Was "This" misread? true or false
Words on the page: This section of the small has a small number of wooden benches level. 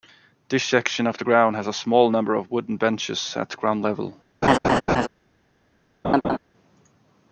false